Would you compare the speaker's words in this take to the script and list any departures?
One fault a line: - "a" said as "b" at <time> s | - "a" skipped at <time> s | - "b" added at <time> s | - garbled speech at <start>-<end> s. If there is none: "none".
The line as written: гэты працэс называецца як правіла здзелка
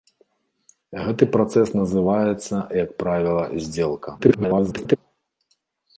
- garbled speech at 4.2-5.0 s